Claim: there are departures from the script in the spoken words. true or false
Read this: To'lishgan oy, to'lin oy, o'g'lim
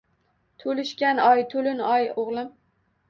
false